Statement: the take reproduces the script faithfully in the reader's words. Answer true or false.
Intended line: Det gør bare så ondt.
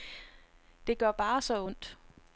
true